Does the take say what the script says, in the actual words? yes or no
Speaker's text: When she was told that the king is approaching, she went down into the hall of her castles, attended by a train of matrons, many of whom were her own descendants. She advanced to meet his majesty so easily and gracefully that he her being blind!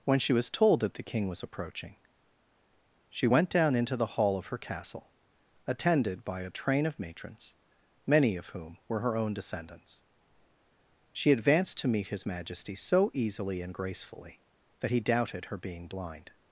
no